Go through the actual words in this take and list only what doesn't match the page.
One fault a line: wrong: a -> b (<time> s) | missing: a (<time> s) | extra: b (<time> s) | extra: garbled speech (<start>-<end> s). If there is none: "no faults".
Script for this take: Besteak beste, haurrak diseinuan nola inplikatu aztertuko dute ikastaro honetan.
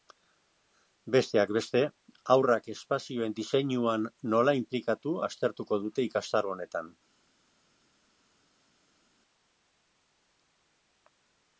extra: espazioen (2.8 s)